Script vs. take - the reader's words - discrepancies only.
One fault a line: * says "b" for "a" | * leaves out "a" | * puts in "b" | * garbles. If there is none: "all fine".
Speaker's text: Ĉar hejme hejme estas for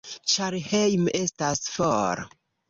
* leaves out "hejme"